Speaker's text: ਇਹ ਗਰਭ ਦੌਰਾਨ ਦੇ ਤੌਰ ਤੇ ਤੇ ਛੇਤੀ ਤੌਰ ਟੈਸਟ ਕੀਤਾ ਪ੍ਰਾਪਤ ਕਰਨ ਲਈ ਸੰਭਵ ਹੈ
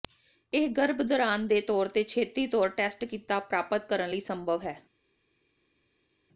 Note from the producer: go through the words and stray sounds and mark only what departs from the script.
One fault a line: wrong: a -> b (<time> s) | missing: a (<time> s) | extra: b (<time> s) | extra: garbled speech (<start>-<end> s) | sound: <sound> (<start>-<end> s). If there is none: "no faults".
missing: ਤੇ (2.0 s)